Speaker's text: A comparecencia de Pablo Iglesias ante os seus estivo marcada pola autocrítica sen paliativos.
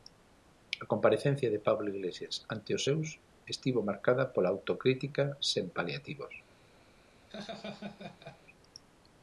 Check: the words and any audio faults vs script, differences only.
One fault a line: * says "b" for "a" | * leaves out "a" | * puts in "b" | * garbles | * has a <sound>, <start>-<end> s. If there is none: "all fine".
* has a laugh, 7.3-8.4 s